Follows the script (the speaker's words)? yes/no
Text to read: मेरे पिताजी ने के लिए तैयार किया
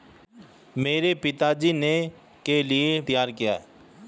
yes